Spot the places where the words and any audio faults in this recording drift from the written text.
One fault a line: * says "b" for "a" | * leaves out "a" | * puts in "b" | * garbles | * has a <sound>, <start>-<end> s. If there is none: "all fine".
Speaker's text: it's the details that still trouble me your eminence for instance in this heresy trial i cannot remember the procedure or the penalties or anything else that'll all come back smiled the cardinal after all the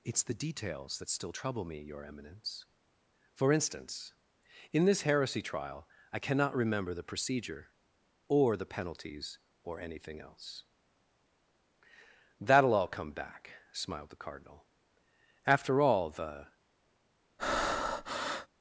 * has a breath, 17.4-18.5 s